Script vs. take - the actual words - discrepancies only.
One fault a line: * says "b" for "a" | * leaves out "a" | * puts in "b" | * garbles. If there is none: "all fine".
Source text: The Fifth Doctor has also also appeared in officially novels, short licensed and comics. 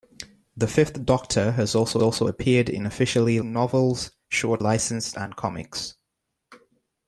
all fine